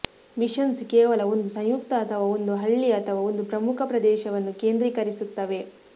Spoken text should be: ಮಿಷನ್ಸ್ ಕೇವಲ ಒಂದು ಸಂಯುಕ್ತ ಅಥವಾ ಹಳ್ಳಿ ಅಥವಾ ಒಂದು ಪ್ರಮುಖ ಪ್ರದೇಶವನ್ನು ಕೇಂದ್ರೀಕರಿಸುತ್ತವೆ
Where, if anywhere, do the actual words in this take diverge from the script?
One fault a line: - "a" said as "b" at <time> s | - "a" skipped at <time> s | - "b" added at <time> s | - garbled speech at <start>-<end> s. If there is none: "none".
- "ಒಂದು" added at 2.3 s